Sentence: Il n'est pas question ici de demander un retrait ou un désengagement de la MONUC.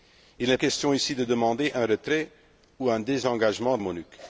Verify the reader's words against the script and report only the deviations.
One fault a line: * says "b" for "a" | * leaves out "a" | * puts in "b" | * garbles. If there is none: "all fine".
* leaves out "pas"
* leaves out "la"